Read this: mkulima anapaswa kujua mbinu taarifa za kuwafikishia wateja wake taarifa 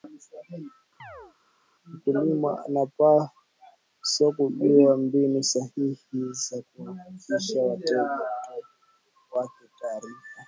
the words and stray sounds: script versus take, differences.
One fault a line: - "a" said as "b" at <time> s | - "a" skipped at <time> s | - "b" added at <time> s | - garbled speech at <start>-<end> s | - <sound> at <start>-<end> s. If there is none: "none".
- chirp at 1.0-1.4 s
- "taarifa" said as "sahihi" at 5.4 s